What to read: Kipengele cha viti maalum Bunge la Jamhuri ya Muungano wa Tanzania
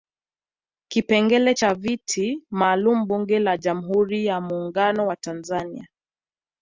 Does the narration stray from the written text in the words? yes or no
no